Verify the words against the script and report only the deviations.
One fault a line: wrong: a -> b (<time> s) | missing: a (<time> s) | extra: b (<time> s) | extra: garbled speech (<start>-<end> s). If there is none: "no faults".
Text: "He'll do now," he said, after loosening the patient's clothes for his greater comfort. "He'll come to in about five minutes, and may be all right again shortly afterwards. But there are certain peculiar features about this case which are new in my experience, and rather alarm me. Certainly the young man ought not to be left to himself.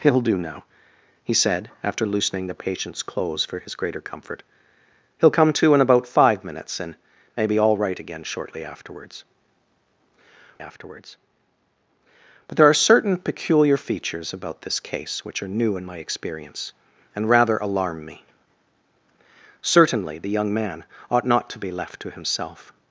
extra: afterwards (10.6 s)